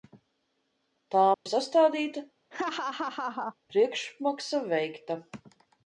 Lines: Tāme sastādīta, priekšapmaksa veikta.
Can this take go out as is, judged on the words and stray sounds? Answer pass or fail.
fail